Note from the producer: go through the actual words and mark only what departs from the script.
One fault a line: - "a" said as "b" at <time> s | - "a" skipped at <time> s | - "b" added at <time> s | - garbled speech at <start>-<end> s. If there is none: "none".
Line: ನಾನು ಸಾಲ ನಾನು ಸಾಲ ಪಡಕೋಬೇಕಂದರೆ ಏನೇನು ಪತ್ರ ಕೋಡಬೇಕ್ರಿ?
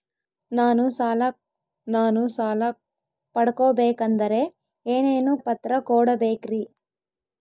none